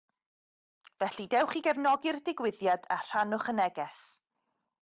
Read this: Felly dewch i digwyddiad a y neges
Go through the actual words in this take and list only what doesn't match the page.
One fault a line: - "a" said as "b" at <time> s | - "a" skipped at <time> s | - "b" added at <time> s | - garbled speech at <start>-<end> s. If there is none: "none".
- "gefnogi'r" added at 1.7 s
- "rhannwch" added at 3.0 s